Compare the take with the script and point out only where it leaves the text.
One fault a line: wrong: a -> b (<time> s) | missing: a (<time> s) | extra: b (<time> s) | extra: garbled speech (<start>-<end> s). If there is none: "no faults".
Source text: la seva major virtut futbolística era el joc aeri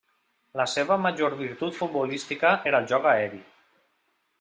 no faults